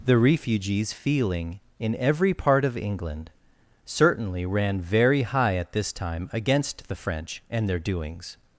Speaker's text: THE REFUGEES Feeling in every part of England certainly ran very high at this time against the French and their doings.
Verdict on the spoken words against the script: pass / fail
pass